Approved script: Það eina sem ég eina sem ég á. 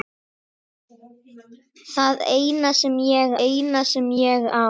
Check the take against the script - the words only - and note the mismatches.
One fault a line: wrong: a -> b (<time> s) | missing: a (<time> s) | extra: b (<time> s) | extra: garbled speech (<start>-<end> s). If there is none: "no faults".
no faults